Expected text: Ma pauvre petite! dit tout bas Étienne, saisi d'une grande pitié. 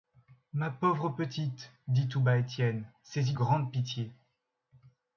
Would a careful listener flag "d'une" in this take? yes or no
yes